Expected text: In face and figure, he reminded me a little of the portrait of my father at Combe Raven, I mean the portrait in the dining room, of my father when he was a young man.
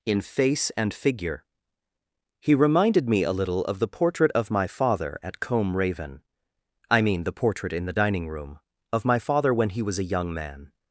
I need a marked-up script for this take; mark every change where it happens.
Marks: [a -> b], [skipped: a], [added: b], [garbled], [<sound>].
In face and figure, he reminded me a little of the portrait of my father at Combe Raven, I mean the portrait in the dining room, of my father when he was a young man.